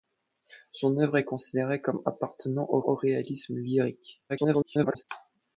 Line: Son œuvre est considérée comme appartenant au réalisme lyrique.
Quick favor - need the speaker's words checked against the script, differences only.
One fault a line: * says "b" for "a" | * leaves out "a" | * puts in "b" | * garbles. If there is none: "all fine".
* puts in "au"
* garbles